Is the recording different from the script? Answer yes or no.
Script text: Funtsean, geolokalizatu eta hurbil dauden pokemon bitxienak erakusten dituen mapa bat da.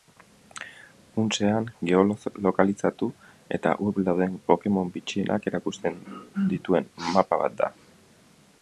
no